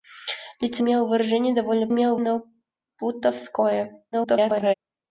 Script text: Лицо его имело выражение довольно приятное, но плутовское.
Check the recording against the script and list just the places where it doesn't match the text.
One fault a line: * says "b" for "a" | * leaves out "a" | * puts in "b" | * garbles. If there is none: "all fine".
* leaves out "его"
* says "имело" for "приятное"
* garbles